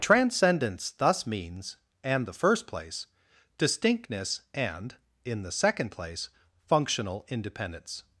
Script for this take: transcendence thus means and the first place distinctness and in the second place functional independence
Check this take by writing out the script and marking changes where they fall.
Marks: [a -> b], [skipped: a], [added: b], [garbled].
transcendence thus means and the first place distinctness and in the second place functional independence